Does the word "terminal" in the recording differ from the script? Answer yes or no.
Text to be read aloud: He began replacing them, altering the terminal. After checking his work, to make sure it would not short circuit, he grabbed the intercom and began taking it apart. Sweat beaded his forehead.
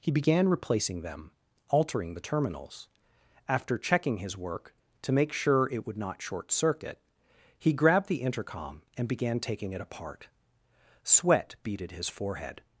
yes